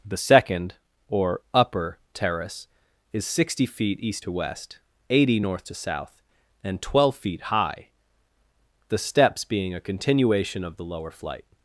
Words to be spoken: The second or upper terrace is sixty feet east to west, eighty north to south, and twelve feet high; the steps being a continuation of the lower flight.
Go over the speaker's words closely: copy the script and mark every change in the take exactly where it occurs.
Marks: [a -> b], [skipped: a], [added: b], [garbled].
The second or upper terrace is sixty feet east to west, eighty north to south, and twelve feet high; the steps being a continuation of the lower flight.